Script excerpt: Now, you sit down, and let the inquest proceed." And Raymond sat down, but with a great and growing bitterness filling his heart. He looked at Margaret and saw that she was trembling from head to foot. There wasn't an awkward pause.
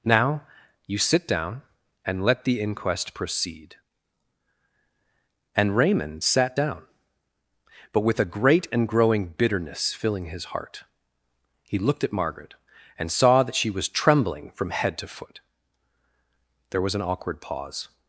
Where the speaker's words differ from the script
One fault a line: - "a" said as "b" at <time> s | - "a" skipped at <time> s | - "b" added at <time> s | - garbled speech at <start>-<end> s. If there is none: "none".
- "wasn't" said as "was" at 16.8 s